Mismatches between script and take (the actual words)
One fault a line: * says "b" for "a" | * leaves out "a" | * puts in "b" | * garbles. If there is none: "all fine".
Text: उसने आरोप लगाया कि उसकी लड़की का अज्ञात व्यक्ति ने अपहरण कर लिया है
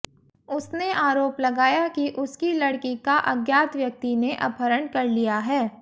all fine